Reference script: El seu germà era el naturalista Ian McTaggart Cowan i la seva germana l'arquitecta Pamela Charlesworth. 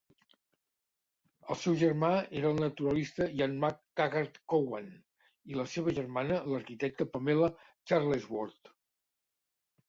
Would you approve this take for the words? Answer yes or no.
yes